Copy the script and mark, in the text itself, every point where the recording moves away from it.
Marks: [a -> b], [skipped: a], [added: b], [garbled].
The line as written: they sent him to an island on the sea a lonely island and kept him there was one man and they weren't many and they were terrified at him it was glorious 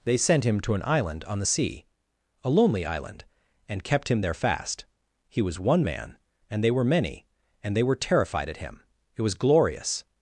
they sent him to an island on the sea a lonely island and kept him there [added: fast he] was one man and they [weren't -> were] many and they were terrified at him it was glorious